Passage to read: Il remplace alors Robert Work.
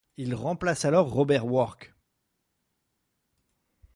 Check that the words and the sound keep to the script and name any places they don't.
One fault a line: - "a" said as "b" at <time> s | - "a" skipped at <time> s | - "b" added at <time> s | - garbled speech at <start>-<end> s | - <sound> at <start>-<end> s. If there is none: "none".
none